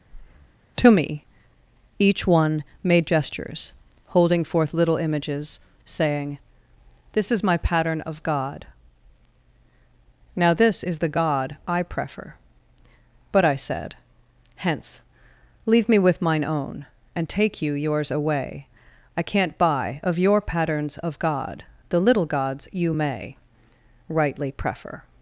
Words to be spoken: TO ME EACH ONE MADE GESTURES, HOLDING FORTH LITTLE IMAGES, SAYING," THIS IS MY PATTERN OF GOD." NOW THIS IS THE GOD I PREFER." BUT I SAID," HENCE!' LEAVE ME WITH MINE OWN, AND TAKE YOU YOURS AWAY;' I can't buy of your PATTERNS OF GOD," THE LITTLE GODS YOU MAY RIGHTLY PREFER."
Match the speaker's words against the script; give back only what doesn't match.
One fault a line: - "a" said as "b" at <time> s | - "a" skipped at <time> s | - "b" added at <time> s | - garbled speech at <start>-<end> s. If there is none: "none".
none